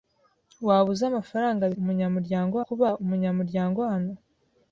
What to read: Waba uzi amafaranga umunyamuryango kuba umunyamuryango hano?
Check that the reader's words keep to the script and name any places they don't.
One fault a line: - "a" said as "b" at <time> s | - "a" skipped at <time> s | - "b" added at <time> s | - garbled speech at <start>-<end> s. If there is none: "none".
none